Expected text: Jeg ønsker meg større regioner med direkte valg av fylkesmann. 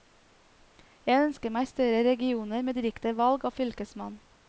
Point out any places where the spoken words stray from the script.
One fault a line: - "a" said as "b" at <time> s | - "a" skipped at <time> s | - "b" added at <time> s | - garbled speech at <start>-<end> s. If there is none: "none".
none